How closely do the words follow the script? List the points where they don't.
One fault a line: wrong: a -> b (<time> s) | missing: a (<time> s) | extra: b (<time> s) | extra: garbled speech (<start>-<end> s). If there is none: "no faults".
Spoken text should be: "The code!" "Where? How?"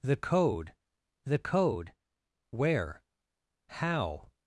extra: the code (1.3 s)